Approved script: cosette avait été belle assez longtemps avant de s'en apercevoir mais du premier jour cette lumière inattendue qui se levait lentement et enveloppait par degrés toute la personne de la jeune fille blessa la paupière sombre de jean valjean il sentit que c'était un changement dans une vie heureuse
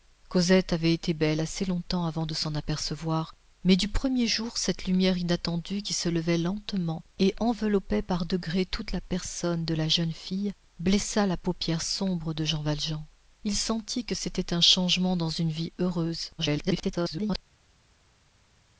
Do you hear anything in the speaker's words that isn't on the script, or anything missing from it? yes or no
yes